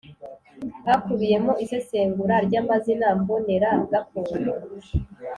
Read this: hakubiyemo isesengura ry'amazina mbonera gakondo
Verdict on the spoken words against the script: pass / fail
pass